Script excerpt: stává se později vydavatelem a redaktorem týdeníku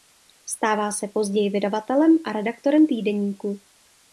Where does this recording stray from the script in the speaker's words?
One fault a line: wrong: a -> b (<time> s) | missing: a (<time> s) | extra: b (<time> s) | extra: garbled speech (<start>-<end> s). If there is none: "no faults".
no faults